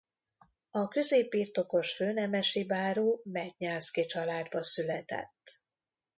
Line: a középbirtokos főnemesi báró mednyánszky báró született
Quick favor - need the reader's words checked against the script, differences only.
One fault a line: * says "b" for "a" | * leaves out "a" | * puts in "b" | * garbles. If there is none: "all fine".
* says "családba" for "báró"